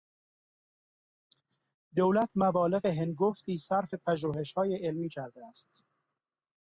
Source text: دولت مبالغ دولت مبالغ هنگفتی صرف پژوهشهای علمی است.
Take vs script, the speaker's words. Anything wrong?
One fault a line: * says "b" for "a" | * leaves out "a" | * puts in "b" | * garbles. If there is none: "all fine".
* leaves out "دولت مبالغ"
* puts in "کرده"